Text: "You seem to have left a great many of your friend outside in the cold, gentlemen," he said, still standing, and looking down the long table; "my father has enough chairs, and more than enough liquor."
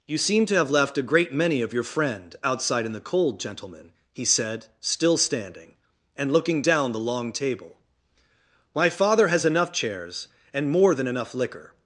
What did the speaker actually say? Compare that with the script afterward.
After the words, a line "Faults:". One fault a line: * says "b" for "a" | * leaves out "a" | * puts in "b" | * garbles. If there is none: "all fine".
"You seem to have left a great many of your friend outside in the cold, gentlemen," he said, still standing, and looking down the long table; "my father has enough chairs, and more than enough liquor."
Faults:
all fine